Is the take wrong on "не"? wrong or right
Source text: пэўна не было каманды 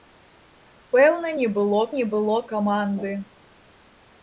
right